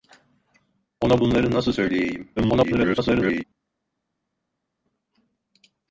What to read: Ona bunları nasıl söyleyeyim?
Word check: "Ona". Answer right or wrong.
right